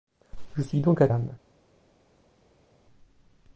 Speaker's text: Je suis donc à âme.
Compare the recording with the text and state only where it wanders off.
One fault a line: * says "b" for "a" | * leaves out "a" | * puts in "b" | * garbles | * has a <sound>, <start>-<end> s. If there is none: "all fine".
all fine